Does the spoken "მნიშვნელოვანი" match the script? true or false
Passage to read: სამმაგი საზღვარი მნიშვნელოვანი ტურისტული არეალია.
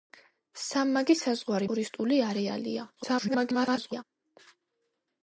false